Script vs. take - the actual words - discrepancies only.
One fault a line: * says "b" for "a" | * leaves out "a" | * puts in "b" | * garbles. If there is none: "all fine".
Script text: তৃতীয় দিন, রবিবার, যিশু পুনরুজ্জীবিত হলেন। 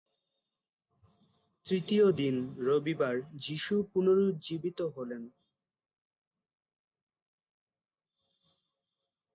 all fine